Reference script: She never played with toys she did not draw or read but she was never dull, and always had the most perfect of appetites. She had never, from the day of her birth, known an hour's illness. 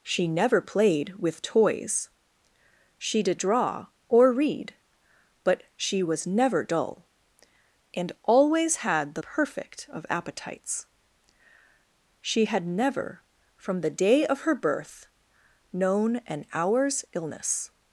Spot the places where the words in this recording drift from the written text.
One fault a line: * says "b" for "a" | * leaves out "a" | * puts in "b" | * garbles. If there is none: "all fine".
* leaves out "not"
* leaves out "most"